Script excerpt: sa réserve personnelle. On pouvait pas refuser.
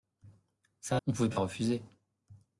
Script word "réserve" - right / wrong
wrong